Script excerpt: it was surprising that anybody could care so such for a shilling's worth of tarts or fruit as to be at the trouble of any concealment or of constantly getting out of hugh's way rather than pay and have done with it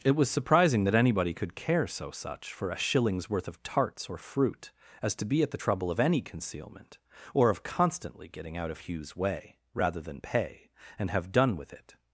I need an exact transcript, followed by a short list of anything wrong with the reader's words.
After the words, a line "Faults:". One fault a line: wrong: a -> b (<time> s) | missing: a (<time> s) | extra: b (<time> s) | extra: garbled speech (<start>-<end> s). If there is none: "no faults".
it was surprising that anybody could care so such for a shilling's worth of tarts or fruit as to be at the trouble of any concealment or of constantly getting out of hugh's way rather than pay and have done with it
Faults:
no faults